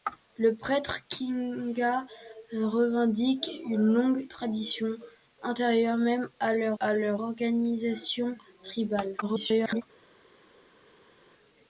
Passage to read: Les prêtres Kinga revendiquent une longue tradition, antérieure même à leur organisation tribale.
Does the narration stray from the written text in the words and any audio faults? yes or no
yes